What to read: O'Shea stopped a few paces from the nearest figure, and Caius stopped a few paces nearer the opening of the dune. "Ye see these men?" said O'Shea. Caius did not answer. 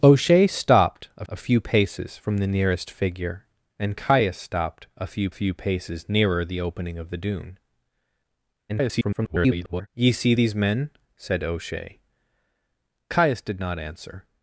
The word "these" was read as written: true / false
true